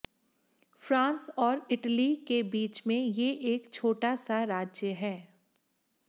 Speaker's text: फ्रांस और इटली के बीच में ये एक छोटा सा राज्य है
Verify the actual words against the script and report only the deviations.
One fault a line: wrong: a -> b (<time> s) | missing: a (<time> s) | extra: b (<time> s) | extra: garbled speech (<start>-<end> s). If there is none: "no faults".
no faults